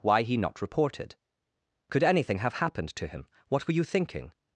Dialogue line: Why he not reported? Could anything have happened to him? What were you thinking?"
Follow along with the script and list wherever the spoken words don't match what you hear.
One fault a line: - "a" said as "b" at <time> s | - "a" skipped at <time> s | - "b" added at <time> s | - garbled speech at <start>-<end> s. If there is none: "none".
none